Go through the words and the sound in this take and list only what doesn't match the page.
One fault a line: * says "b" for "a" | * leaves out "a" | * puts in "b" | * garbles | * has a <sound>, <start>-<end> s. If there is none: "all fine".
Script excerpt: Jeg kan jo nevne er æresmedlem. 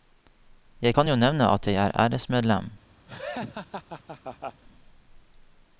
* puts in "at jeg"
* has a laugh, 3.1-4.6 s